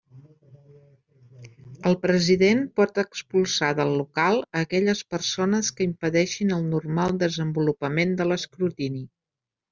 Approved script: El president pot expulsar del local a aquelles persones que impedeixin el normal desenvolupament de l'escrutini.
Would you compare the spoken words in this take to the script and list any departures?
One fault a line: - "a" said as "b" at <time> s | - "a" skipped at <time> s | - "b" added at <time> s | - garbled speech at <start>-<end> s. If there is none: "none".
none